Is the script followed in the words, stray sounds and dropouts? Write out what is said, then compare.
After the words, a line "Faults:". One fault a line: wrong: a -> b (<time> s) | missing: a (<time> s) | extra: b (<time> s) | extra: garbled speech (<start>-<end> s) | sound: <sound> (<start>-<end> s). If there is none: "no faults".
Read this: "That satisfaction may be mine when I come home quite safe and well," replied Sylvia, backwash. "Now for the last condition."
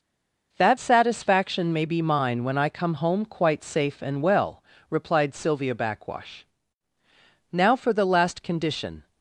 "That satisfaction may be mine when I come home quite safe and well," replied Sylvia, backwash. "Now for the last condition."
Faults:
no faults